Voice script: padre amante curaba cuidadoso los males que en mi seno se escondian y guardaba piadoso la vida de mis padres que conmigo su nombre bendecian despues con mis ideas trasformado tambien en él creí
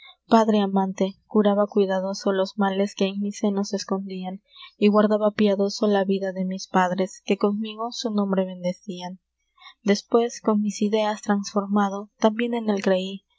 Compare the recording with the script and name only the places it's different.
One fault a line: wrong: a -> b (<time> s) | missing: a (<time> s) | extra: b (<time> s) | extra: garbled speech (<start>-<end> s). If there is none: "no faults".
no faults